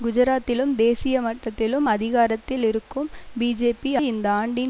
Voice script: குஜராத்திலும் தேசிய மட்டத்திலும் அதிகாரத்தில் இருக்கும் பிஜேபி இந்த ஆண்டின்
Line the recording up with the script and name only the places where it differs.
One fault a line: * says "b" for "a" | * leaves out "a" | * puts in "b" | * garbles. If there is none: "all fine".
all fine